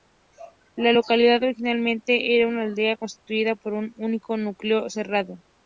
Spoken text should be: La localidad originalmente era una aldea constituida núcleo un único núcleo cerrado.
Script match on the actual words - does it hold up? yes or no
no